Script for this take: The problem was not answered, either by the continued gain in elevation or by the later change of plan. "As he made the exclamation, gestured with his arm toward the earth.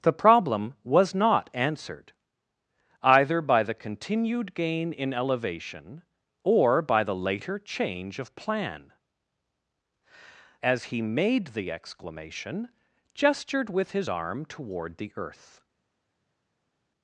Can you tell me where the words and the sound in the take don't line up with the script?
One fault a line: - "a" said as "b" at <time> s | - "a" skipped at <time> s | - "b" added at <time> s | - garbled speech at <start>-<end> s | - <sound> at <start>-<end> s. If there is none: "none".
none